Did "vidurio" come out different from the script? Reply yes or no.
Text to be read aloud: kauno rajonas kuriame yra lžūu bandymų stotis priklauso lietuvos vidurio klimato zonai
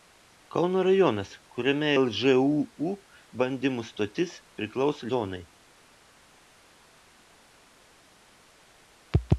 yes